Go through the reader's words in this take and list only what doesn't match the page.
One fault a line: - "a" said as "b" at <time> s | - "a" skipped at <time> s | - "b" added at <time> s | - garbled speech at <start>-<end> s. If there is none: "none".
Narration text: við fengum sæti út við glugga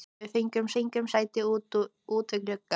- "fengum" added at 0.8 s